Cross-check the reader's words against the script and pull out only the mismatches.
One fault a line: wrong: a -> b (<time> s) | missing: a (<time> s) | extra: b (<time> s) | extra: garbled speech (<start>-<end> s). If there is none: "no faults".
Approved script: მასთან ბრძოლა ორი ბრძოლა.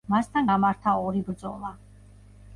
wrong: ბრძოლა -> გამართა (0.5 s)